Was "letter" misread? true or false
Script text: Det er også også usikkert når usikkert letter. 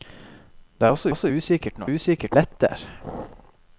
false